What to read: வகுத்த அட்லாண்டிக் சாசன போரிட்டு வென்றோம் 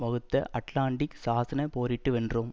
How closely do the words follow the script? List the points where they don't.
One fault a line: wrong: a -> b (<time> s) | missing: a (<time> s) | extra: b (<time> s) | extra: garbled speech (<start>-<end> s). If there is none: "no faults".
no faults